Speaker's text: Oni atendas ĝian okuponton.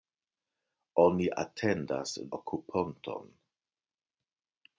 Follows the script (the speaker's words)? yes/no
no